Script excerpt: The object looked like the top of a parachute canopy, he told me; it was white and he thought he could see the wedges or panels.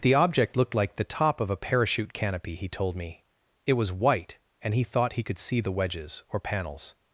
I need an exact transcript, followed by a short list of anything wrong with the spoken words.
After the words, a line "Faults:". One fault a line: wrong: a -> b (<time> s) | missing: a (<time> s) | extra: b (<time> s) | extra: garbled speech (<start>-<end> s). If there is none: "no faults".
The object looked like the top of a parachute canopy, he told me; it was white and he thought he could see the wedges or panels.
Faults:
no faults